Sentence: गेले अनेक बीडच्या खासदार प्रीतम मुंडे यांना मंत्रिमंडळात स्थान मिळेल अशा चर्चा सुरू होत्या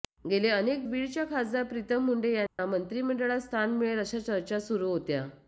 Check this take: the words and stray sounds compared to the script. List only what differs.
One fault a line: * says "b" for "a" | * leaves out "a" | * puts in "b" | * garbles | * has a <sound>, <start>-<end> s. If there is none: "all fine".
* has a dropout, 2.5-2.6 s